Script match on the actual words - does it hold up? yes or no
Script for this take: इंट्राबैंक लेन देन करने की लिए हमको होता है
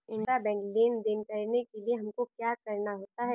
no